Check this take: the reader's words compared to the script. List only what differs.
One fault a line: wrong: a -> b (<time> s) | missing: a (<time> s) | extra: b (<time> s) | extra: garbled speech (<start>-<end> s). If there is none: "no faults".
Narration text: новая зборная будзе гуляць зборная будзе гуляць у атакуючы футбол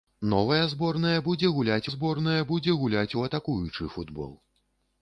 no faults